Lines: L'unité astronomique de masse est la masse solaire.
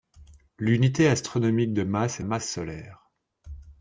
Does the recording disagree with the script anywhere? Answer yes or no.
yes